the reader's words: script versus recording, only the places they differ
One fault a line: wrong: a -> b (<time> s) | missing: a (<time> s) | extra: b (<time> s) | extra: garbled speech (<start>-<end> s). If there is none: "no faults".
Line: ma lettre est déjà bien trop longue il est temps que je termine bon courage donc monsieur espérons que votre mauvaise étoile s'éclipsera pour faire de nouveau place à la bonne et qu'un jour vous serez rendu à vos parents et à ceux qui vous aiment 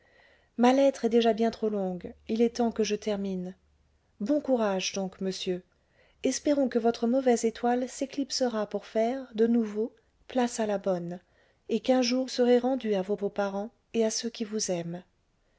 missing: vous (12.2 s)
extra: vos (13.1 s)